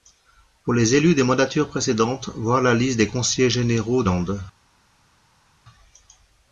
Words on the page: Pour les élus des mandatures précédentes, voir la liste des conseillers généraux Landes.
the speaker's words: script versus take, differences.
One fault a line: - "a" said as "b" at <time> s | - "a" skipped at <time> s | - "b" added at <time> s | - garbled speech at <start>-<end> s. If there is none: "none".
none